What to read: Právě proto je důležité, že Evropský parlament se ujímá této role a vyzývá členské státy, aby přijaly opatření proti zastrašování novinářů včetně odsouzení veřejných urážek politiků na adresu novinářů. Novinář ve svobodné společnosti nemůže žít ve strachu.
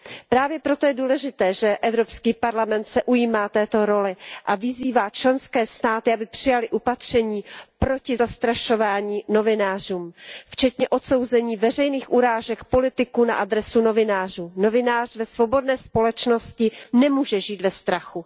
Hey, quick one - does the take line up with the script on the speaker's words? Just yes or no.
yes